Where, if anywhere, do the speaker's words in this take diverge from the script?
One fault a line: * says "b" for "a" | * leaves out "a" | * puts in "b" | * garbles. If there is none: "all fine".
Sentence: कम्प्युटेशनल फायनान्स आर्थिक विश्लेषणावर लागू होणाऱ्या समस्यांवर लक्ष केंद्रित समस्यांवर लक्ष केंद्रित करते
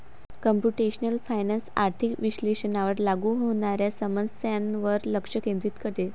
* leaves out "समस्यांवर लक्ष केंद्रित"